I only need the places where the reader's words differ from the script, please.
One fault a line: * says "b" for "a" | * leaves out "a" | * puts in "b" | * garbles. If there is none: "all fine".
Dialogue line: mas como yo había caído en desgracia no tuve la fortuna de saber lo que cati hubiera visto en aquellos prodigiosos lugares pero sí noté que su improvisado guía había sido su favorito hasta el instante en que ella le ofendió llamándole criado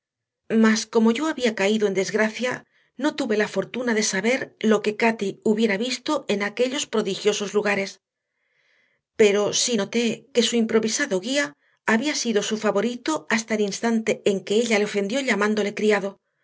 all fine